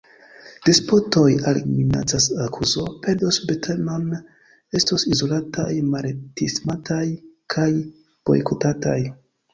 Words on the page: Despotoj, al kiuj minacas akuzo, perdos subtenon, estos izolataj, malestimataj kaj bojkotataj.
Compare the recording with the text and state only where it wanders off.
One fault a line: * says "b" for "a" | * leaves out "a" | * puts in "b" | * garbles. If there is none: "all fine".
* leaves out "kiuj"